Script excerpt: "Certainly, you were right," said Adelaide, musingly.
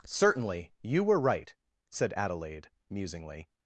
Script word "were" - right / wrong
right